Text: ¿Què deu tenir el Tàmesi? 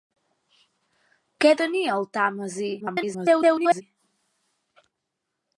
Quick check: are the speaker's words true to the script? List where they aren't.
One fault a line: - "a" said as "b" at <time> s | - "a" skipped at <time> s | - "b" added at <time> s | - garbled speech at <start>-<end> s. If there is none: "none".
- "deu" skipped at 1.5 s
- garbled speech at 2.8-3.8 s